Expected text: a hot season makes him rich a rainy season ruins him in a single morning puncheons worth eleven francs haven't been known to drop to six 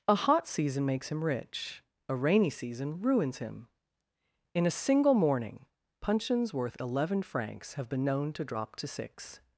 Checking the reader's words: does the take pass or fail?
fail